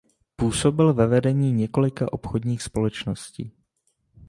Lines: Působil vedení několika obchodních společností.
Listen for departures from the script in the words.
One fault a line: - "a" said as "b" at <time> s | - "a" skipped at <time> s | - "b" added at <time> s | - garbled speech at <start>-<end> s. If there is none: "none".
- "ve" added at 0.9 s